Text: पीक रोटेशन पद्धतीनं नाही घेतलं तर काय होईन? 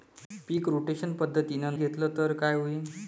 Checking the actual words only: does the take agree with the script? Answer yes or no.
no